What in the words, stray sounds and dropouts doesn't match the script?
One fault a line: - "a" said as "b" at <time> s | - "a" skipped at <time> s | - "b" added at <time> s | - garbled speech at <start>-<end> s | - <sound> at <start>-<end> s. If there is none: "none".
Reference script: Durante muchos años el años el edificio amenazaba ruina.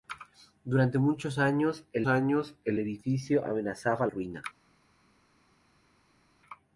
none